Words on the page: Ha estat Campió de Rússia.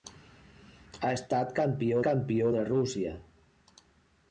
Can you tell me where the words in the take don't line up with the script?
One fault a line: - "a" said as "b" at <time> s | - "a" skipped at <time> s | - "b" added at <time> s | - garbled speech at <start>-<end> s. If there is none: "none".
- "Campió" added at 2.0 s